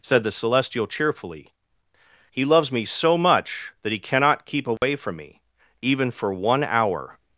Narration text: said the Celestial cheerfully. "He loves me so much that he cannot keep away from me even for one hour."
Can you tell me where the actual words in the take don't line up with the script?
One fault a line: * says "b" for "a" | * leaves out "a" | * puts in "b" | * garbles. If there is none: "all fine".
all fine